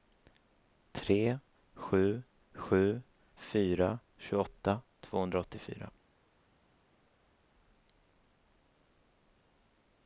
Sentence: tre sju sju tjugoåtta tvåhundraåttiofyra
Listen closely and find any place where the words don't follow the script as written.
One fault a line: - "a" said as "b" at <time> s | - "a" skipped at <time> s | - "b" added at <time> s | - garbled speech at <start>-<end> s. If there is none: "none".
- "fyra" added at 3.3 s